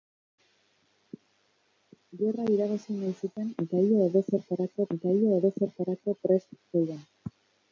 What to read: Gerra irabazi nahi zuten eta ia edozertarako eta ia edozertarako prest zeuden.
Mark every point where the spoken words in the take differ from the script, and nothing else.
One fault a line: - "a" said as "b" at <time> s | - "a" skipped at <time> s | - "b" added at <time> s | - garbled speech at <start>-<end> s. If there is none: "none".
none